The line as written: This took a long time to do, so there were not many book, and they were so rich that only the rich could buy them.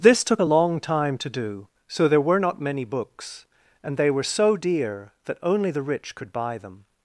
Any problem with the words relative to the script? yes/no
yes